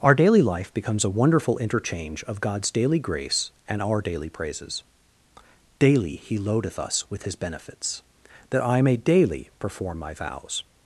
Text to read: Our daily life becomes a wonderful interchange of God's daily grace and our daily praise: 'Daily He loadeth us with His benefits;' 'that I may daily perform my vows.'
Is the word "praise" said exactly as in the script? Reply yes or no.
no